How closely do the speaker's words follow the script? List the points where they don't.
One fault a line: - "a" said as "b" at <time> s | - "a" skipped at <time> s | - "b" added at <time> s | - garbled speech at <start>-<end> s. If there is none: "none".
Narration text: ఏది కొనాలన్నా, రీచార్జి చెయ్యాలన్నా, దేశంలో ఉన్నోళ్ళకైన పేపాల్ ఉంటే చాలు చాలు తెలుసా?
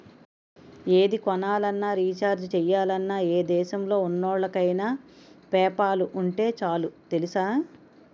- "ఏ" added at 3.3 s
- "చాలు" skipped at 6.9 s